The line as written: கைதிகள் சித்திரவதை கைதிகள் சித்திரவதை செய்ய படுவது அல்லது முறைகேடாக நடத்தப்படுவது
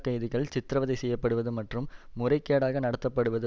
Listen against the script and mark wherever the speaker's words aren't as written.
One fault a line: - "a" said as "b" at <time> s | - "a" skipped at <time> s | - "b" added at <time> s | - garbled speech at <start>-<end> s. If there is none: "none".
- "கைதிகள் சித்திரவதை" skipped at 0.9 s
- "அல்லது" said as "மற்றும்" at 1.5 s